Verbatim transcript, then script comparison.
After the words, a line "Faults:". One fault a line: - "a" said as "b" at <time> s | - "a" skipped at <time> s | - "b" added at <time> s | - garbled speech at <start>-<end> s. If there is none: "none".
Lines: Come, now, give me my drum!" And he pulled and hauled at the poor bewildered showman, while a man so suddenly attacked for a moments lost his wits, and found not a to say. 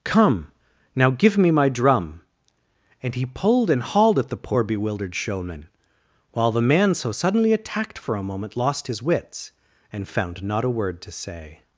Come, now, give me my drum!" And he pulled and hauled at the poor bewildered showman, while the man so suddenly attacked for a moment lost his wits, and found not a word to say.
Faults:
- "a" said as "the" at 6.5 s
- "moments" said as "moment" at 8.2 s
- "word" added at 10.7 s